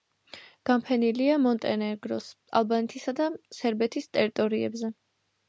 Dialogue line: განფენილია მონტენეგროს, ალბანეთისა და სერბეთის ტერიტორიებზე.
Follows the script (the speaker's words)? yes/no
yes